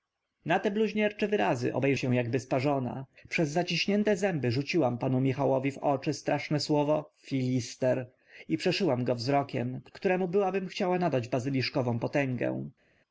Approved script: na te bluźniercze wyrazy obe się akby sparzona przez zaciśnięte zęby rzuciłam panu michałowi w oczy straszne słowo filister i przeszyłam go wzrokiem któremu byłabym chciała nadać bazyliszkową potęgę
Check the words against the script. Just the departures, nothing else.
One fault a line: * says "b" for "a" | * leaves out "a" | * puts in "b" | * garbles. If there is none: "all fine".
all fine